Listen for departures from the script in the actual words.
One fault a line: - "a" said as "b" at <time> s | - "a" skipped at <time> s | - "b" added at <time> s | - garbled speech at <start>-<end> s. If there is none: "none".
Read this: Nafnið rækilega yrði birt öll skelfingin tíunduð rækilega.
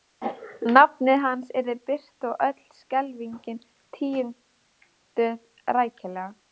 - "rækilega" said as "hans" at 1.2 s
- "og" added at 2.3 s